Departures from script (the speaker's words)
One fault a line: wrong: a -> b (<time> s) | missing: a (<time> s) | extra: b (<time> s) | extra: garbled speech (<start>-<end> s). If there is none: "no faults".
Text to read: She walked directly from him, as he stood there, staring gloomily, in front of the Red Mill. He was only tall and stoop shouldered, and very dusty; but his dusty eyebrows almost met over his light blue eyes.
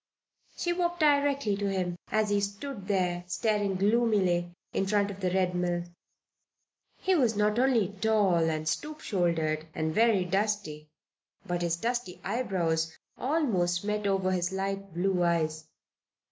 wrong: from -> to (1.5 s)
extra: not (7.3 s)